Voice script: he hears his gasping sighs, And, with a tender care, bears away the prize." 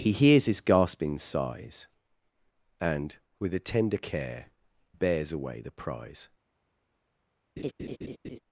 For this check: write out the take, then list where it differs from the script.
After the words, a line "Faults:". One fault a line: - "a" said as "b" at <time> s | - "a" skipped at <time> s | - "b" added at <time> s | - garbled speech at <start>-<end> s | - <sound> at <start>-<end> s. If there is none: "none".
he hears his gasping sighs, And, with a tender care, bears away the prize."
Faults:
- laugh at 7.6-8.4 s